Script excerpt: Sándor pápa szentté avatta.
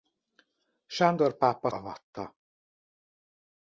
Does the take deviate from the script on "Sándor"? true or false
false